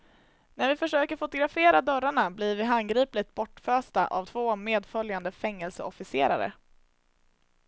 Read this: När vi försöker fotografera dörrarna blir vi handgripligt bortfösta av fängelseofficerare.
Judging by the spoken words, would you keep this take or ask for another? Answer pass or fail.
fail